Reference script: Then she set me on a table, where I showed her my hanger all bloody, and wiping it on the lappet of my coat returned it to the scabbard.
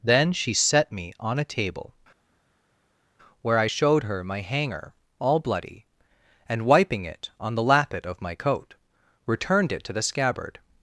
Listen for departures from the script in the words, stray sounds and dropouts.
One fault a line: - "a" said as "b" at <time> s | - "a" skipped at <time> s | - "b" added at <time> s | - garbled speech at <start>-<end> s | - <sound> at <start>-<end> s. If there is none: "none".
none